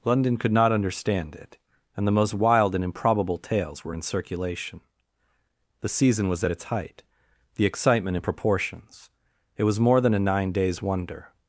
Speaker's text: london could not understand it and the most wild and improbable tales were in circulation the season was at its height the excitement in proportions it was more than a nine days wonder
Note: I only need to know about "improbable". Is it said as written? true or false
true